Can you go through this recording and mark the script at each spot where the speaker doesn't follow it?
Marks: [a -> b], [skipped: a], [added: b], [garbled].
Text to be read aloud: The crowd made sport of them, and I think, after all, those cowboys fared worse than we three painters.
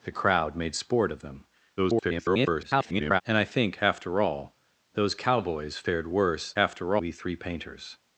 The crowd made sport of them, [garbled] and I think, after all, those cowboys fared worse [than -> after] we three painters.